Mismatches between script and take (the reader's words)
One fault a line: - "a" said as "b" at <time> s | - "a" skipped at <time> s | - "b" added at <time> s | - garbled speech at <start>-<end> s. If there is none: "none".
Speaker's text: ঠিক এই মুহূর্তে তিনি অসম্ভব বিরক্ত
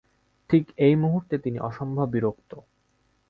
none